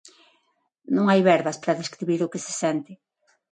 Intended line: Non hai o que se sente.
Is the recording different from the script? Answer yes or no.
yes